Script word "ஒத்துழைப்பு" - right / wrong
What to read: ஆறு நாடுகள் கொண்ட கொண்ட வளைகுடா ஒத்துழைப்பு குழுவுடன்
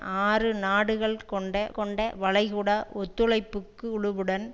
right